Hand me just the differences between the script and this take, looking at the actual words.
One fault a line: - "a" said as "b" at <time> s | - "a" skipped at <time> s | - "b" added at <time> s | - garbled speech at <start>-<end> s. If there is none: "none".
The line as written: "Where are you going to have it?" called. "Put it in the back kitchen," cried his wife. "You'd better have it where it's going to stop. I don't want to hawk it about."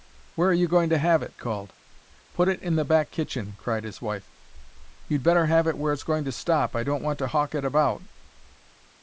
none